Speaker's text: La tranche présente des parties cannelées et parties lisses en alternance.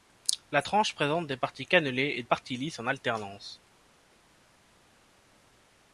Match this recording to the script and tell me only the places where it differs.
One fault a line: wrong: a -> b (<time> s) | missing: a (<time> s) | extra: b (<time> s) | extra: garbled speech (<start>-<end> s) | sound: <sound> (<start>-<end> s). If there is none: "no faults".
no faults